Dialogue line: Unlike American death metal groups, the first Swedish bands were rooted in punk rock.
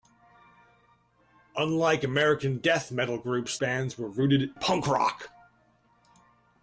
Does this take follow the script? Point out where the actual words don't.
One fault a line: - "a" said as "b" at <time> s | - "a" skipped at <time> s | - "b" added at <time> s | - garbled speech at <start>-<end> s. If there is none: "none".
- "the first Swedish" skipped at 3.6 s
- "in" skipped at 4.6 s